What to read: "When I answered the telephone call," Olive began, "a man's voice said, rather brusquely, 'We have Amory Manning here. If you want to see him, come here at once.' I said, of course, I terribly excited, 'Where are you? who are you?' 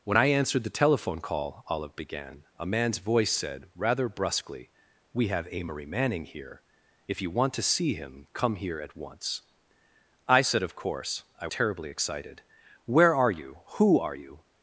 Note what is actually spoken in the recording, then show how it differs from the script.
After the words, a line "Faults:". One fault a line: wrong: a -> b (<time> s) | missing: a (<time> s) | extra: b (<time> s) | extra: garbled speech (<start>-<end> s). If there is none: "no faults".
"When I answered the telephone call," Olive began, "a man's voice said, rather brusquely, 'We have Amory Manning here. If you want to see him, come here at once.' I said, of course, I terribly excited, 'Where are you? who are you?'
Faults:
no faults